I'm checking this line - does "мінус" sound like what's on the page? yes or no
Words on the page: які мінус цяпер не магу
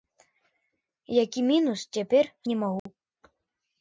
yes